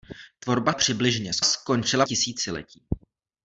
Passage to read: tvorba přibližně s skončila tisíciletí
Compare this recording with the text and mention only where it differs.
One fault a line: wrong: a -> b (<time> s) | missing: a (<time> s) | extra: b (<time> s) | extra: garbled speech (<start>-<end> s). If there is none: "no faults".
no faults